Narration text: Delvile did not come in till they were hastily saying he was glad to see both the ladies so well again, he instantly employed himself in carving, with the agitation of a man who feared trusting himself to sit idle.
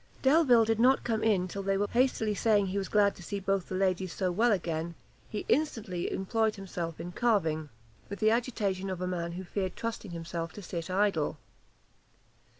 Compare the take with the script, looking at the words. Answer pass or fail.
pass